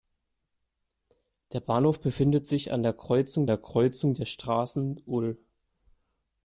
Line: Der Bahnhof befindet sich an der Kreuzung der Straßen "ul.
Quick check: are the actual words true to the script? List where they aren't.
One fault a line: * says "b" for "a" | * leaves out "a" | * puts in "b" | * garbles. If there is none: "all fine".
* puts in "Kreuzung der"